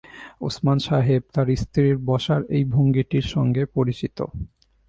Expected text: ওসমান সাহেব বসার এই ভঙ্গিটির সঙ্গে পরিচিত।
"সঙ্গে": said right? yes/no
yes